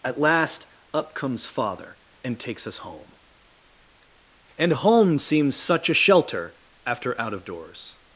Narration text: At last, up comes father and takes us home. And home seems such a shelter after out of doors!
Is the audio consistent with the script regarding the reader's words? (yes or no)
yes